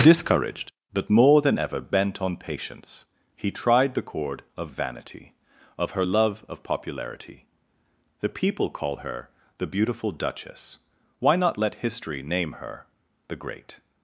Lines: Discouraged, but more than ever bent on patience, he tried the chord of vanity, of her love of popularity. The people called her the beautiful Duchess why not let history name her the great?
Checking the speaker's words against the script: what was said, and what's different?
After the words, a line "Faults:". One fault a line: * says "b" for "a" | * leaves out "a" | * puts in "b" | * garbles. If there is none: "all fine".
Discouraged, but more than ever bent on patience, he tried the chord of vanity, of her love of popularity. The people call her the beautiful Duchess why not let history name her the great?
Faults:
* says "call" for "called"